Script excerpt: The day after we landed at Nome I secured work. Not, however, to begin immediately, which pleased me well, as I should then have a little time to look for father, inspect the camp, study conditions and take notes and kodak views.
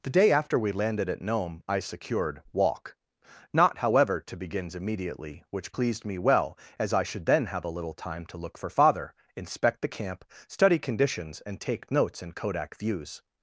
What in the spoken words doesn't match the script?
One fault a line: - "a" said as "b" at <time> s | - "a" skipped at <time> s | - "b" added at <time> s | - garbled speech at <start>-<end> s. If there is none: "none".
- "work" said as "walk" at 2.5 s
- "begin" said as "begins" at 4.3 s